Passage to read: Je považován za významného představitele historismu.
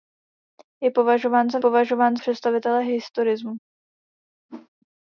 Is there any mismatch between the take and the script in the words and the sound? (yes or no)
yes